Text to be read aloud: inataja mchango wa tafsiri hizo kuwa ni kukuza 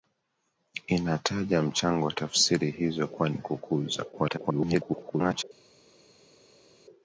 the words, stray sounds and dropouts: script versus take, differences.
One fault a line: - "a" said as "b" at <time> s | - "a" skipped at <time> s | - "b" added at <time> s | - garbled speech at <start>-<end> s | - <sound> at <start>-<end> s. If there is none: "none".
- garbled speech at 4.1-5.4 s